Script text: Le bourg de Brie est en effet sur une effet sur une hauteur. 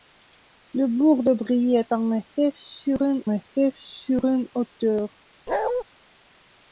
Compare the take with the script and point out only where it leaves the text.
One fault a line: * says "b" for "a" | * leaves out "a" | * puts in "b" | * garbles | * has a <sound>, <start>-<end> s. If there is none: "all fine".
* has a bark, 5.5-5.8 s